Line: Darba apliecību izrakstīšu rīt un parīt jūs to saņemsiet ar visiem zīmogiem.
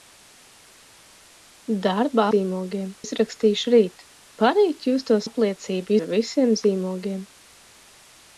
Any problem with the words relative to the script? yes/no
yes